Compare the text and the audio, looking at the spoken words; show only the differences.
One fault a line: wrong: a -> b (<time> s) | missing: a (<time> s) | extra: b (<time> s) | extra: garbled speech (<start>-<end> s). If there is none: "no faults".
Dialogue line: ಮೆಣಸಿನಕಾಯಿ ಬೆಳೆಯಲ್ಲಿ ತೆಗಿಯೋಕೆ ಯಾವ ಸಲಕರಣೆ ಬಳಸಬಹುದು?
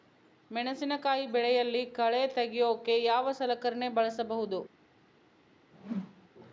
extra: ಕಳೆ (1.8 s)